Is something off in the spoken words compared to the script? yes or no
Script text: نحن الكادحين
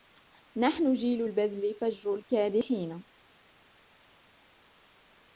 yes